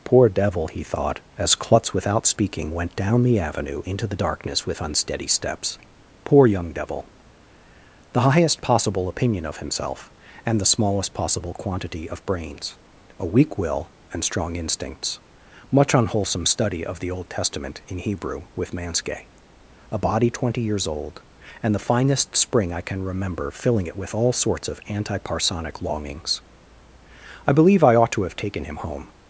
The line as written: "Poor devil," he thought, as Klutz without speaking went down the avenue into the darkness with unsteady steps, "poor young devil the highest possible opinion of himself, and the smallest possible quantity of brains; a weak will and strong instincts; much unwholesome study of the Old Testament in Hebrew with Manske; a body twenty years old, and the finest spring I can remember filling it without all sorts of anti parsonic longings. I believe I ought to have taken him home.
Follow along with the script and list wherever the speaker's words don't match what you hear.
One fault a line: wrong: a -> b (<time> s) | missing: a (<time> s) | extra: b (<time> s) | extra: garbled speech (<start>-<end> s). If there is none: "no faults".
wrong: without -> with (24.0 s)